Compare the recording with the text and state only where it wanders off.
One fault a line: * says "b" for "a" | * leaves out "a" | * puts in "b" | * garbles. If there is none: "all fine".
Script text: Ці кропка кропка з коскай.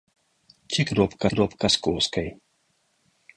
all fine